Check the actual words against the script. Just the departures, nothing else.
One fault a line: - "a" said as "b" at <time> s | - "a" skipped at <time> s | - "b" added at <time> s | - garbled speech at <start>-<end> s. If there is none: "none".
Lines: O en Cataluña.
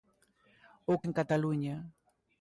none